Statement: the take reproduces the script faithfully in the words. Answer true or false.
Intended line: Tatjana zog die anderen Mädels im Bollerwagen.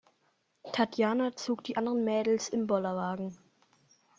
true